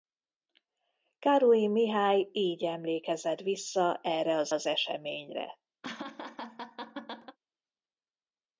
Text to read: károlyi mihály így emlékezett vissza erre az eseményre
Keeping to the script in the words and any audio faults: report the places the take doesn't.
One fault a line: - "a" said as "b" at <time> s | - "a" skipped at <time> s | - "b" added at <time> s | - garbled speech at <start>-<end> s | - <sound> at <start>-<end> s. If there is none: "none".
- "az" added at 4.5 s
- laugh at 5.8-7.4 s